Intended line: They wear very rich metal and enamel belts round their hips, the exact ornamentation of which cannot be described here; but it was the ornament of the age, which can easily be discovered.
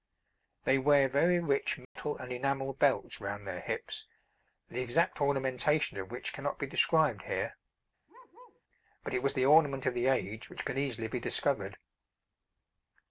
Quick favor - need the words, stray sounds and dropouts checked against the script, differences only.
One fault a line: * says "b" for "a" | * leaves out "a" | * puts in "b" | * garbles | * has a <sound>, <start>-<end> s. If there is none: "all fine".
* has a dropout, 1.8-2.0 s
* has a bark, 8.1-8.6 s